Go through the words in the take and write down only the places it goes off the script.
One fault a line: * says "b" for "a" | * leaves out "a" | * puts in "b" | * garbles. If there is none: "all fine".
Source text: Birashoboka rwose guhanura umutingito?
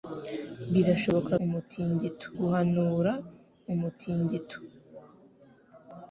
* says "umutingito" for "rwose"